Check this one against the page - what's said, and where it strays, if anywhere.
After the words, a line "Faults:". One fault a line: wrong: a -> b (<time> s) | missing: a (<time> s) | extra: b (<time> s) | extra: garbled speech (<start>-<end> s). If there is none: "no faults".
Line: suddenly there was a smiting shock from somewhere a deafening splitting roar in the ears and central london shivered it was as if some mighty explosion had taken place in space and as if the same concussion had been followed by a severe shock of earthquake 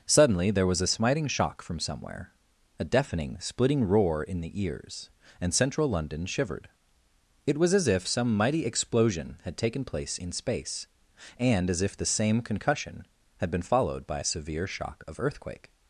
suddenly there was a smiting shock from somewhere a deafening splitting roar in the ears and central london shivered it was as if some mighty explosion had taken place in space and as if the same concussion had been followed by a severe shock of earthquake
Faults:
no faults